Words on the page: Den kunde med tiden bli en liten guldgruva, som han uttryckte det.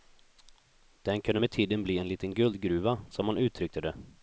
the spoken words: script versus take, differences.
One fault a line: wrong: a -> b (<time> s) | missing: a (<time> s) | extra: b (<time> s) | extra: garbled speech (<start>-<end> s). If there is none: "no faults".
no faults